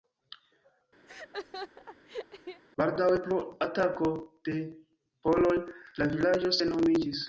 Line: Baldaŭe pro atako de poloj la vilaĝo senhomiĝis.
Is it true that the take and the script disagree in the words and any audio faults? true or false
true